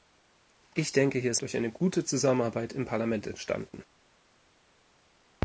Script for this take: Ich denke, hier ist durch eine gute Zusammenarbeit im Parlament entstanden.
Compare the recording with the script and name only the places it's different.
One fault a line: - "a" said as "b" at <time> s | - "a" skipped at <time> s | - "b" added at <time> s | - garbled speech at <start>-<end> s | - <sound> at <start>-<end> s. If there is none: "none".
none